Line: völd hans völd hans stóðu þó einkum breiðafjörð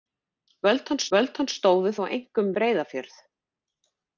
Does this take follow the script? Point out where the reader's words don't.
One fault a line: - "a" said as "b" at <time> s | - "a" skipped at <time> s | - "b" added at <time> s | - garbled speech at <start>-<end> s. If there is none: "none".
none